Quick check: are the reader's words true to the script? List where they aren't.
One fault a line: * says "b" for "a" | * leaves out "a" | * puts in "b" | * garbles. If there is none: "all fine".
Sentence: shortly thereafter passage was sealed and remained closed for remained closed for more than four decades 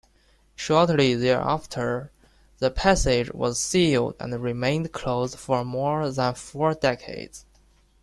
* puts in "the"
* leaves out "remained closed for"